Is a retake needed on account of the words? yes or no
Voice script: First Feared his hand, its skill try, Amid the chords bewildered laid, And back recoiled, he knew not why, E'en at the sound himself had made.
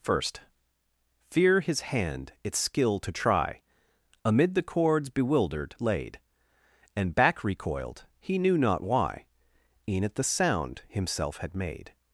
yes